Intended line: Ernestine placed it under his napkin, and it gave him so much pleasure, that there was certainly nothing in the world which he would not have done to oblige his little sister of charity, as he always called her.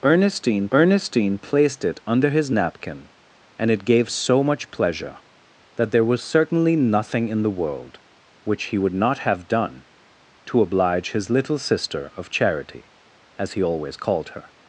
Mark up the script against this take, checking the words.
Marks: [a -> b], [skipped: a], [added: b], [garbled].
Ernestine [added: ernestine] placed it under his napkin, and it gave [skipped: him] so much pleasure, that there was certainly nothing in the world which he would not have done to oblige his little sister of charity, as he always called her.